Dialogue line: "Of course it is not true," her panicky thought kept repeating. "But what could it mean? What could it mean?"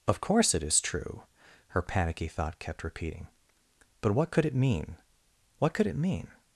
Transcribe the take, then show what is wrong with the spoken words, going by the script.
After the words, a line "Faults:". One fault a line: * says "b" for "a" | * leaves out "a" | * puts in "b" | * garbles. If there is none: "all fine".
"Of course it is true," her panicky thought kept repeating. "But what could it mean? What could it mean?"
Faults:
* leaves out "not"